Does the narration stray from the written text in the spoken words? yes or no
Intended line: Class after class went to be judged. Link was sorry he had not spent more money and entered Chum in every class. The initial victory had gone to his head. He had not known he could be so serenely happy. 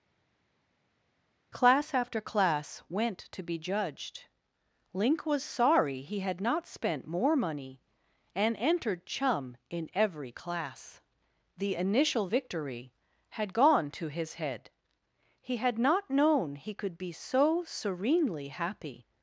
no